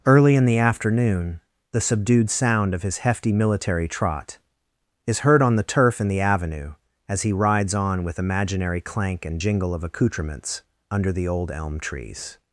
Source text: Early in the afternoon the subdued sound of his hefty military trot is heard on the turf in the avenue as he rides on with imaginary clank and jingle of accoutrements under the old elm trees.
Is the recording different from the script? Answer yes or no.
no